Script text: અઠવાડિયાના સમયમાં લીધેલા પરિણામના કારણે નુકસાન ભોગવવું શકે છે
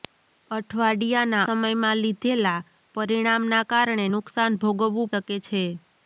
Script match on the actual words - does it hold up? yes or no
yes